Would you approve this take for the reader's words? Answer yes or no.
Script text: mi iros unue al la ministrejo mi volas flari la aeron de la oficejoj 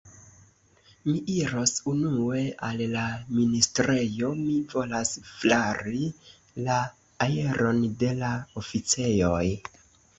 yes